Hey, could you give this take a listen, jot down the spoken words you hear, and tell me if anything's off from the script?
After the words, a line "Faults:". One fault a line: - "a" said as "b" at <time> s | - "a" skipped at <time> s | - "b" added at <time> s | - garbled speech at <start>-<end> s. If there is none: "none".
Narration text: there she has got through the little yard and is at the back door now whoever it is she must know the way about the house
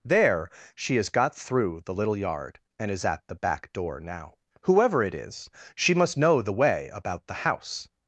there she has got through the little yard and is at the back door now whoever it is she must know the way about the house
Faults:
none